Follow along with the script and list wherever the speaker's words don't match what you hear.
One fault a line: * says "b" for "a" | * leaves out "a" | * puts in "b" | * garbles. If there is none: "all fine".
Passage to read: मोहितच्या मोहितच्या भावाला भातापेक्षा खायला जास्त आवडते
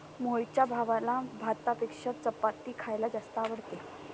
* leaves out "मोहितच्या"
* puts in "चपाती"